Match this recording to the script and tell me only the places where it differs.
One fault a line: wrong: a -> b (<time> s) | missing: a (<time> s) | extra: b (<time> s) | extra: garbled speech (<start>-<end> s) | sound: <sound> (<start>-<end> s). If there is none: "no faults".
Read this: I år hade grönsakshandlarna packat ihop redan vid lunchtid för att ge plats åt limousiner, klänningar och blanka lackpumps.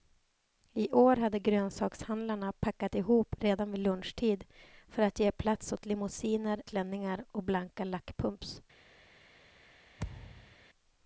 sound: thud (10.0-10.6 s)